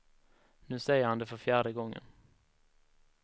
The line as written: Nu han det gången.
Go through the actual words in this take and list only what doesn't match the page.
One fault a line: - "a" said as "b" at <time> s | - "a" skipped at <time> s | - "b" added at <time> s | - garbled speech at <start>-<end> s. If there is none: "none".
- "säger" added at 0.8 s
- "för fjärde" added at 1.2 s